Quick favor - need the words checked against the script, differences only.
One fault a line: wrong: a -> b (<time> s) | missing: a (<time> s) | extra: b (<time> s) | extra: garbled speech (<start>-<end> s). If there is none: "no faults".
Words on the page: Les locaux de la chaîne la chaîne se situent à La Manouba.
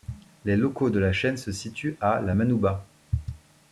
missing: la chaîne (1.4 s)